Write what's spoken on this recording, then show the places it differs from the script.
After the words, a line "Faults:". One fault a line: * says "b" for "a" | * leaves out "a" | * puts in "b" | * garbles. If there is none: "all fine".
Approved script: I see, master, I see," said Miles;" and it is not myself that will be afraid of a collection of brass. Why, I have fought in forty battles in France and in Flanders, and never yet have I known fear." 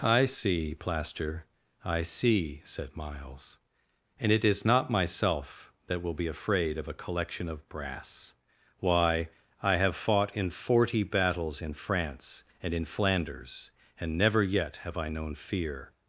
I see, plaster, I see," said Miles;" and it is not myself that will be afraid of a collection of brass. Why, I have fought in forty battles in France and in Flanders, and never yet have I known fear."
Faults:
* says "plaster" for "master"